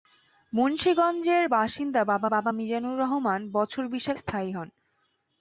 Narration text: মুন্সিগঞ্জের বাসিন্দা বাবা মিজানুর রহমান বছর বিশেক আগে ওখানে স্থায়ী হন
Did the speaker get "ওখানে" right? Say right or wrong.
wrong